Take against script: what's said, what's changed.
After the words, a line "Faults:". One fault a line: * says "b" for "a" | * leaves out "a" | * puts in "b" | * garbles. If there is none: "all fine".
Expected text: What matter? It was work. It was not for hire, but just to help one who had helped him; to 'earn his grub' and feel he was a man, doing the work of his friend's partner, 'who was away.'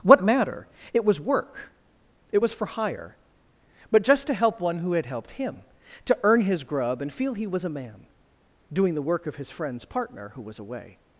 What matter? It was work. It was for hire, but just to help one who had helped him; to 'earn his grub' and feel he was a man, doing the work of his friend's partner, 'who was away.'
Faults:
* leaves out "not"